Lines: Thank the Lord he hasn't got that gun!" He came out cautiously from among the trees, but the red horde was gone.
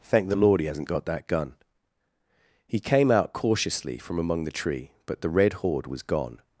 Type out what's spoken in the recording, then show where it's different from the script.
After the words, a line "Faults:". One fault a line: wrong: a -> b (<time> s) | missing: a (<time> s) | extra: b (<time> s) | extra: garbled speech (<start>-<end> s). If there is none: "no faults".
Thank the Lord he hasn't got that gun!" He came out cautiously from among the tree, but the red horde was gone.
Faults:
wrong: trees -> tree (4.5 s)